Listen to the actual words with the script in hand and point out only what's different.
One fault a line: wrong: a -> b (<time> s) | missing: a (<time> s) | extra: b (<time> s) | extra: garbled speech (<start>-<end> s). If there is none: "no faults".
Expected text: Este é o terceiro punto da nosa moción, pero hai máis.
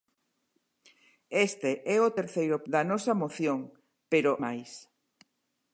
missing: punto (2.6 s)
missing: hai (4.3 s)